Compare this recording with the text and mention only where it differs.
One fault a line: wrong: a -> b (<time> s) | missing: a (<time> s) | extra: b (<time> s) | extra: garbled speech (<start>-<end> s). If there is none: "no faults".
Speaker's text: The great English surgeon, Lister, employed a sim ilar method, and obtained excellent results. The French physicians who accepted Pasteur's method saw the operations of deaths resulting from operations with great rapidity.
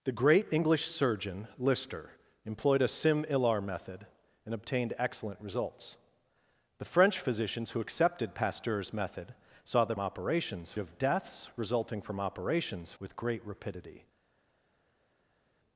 no faults